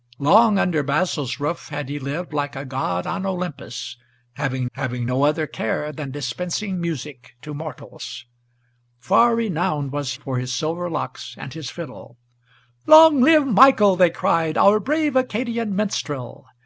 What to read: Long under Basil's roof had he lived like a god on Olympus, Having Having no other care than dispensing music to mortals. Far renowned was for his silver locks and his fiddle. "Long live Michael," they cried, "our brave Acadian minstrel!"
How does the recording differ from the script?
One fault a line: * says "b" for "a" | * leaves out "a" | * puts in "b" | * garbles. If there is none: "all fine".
all fine